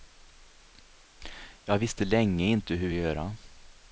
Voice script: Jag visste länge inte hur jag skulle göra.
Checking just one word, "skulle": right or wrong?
wrong